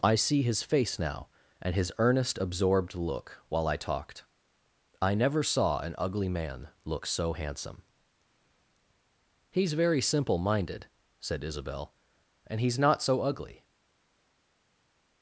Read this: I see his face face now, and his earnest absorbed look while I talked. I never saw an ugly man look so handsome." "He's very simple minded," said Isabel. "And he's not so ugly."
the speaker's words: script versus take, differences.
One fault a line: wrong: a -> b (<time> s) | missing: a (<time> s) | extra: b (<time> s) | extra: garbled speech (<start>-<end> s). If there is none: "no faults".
missing: face (1.0 s)